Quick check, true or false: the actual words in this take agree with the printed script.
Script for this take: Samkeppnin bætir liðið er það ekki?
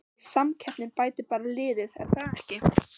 false